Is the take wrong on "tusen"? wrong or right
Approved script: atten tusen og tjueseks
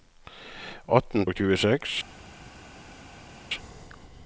wrong